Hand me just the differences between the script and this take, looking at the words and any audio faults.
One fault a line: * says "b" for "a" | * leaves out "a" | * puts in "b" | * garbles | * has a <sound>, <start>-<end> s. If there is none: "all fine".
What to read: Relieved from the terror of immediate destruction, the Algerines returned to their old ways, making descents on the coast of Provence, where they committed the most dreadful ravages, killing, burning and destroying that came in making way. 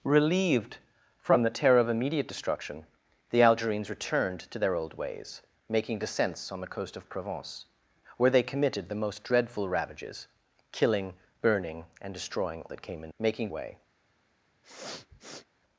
* has a sniff, 14.6-15.5 s